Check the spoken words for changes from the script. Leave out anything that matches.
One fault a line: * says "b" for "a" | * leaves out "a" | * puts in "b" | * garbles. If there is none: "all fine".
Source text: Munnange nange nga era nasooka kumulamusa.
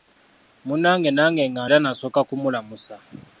all fine